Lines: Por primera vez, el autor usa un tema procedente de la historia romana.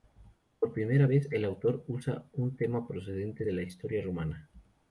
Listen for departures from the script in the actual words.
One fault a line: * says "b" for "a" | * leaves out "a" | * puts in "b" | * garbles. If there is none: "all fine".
all fine